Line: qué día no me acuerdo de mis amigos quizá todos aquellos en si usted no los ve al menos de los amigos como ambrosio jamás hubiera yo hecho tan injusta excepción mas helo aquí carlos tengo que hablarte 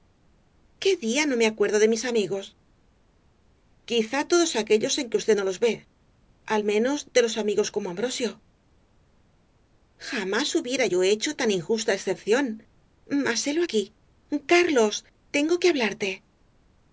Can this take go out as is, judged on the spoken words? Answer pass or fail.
fail